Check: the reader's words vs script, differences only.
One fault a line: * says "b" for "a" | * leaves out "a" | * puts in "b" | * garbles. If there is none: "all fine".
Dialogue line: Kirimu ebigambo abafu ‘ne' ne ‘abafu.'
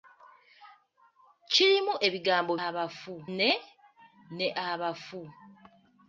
all fine